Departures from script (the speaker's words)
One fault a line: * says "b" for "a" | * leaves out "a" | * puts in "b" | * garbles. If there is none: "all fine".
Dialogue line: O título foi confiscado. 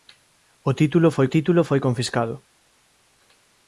* puts in "título foi"